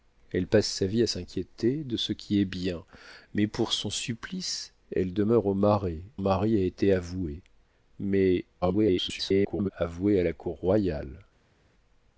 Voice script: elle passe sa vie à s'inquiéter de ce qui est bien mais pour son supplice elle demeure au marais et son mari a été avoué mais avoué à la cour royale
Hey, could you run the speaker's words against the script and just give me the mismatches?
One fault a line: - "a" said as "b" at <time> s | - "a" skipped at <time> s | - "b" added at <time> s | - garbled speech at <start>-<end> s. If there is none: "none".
- "et son" skipped at 6.0 s
- garbled speech at 8.6-9.7 s